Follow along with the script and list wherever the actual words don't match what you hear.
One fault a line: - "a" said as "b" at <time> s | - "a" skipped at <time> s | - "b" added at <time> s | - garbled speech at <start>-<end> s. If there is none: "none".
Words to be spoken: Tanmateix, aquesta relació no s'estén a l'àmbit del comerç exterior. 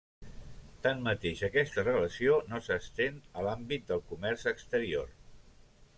none